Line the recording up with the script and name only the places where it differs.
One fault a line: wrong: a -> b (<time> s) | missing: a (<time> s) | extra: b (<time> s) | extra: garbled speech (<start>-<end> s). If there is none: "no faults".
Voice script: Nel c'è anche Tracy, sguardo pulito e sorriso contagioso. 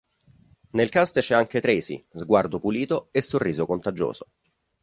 extra: cast (0.9 s)